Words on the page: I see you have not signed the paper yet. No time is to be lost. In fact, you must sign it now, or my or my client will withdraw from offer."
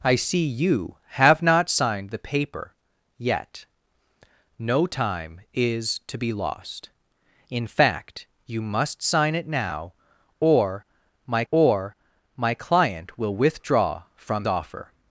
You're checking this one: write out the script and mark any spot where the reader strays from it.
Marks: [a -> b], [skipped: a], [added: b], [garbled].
I see you have not signed the paper yet. No time is to be lost. In fact, you must sign it now, or my or my client will withdraw from offer."